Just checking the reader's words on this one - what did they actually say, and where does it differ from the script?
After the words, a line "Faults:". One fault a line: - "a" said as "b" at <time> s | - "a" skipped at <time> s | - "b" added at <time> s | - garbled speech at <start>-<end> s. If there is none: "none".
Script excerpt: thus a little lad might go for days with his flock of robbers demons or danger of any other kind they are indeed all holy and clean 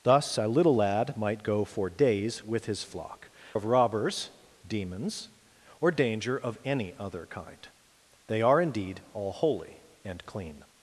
thus a little lad might go for days with his flock of robbers demons or danger of any other kind they are indeed all holy and clean
Faults:
none